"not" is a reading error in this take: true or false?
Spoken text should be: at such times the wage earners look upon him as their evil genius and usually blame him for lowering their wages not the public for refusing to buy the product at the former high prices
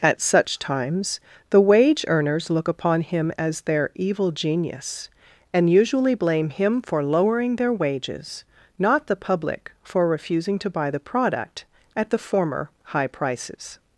false